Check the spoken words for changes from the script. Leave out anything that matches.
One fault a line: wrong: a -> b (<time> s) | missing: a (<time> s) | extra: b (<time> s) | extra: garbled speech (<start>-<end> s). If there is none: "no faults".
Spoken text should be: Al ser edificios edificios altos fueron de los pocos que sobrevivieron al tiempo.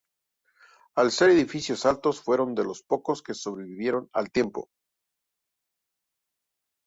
missing: edificios (1.9 s)